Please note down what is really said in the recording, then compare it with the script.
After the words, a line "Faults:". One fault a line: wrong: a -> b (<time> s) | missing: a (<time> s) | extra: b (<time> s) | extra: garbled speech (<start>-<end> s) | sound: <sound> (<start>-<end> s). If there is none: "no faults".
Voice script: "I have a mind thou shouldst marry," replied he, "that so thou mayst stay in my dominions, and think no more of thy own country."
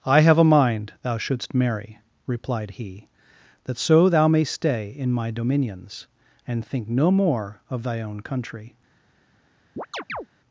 "I have a mind thou shouldst marry," replied he, "that so thou mayst stay in my dominions, and think no more of thy own country."
Faults:
sound: chirp (9.8-10.3 s)